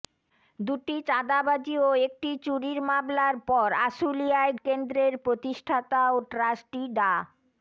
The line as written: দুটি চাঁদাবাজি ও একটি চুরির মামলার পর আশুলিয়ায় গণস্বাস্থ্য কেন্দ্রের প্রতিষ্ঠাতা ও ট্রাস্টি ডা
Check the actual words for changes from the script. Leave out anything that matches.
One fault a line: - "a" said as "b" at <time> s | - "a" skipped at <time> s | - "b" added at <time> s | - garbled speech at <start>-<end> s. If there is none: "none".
- "গণস্বাস্থ্য" skipped at 4.5 s